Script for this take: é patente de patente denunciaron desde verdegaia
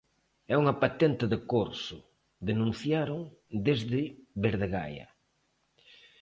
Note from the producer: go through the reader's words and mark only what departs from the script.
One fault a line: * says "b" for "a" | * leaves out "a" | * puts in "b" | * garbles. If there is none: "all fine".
* puts in "unha"
* says "corso" for "patente"